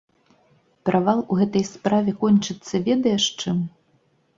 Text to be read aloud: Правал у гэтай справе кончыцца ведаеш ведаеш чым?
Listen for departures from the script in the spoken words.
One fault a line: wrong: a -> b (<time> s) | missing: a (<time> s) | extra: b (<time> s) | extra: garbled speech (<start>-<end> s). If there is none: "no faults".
missing: ведаеш (3.2 s)